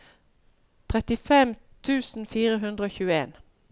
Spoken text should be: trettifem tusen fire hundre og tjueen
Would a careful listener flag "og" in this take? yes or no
no